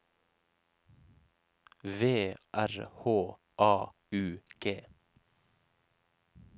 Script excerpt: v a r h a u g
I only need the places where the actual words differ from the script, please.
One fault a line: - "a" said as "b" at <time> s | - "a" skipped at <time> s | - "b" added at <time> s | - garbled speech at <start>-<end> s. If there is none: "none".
- "a" skipped at 2.3 s